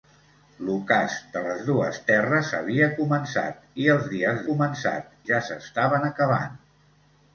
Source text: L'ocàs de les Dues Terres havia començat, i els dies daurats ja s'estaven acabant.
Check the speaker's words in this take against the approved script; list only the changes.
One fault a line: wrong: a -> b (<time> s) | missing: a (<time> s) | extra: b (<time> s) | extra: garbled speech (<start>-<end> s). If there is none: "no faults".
wrong: daurats -> començat (4.5 s)